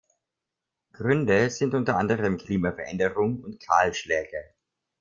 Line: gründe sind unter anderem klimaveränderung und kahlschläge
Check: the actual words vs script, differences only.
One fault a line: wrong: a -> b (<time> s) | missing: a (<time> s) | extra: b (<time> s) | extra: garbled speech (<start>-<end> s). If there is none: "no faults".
no faults